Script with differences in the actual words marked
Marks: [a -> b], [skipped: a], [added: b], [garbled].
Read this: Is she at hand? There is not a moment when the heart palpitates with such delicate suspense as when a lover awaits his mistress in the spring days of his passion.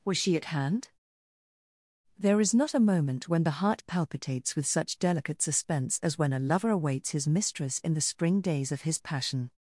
[Is -> Was] she at hand? There is not a moment when the heart palpitates with such delicate suspense as when a lover awaits his mistress in the spring days of his passion.